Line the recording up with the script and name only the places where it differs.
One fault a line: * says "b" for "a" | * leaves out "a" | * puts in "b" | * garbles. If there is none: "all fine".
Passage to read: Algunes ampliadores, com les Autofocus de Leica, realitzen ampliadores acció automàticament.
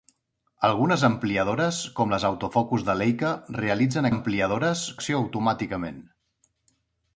all fine